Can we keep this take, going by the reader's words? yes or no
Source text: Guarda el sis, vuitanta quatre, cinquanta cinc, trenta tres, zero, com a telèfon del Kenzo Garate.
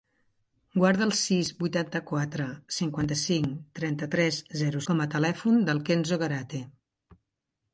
yes